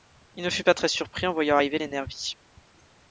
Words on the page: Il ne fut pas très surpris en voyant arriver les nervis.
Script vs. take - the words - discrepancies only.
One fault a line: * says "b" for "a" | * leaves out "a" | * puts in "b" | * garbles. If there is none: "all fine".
all fine